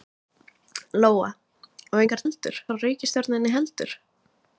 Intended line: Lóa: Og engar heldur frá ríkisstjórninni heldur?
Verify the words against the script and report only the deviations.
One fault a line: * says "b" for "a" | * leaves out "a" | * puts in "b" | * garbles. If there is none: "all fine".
all fine